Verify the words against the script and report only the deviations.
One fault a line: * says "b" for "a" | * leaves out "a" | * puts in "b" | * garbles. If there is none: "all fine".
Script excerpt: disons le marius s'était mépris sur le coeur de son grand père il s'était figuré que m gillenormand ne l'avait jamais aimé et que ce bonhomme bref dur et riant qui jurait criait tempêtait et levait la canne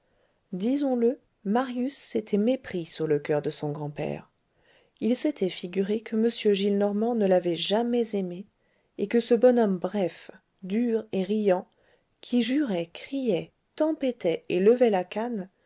all fine